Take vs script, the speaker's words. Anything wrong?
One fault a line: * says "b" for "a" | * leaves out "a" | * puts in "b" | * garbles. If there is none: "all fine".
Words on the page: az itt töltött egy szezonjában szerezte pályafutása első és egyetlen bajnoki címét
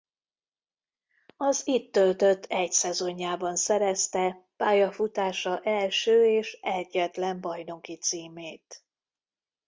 all fine